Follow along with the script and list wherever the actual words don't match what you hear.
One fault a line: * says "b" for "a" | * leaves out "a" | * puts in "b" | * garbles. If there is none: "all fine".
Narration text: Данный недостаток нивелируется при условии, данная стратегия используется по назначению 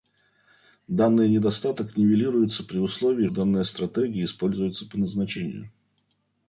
all fine